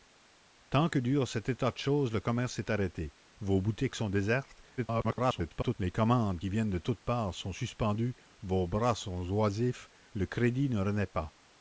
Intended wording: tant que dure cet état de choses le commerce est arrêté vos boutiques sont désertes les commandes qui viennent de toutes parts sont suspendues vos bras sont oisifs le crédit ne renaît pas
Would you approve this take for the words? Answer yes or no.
no